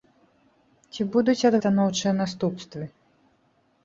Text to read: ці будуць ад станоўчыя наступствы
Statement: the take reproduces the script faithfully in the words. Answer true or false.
true